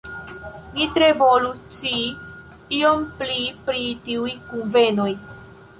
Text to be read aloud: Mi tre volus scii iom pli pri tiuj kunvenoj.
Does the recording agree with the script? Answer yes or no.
yes